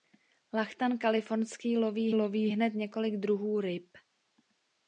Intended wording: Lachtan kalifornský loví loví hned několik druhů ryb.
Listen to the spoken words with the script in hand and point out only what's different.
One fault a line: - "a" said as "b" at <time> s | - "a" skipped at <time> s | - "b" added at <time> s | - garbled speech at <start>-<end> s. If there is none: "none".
none